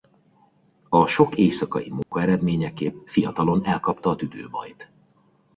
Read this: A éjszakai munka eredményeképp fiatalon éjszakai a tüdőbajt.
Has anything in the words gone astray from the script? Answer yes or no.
yes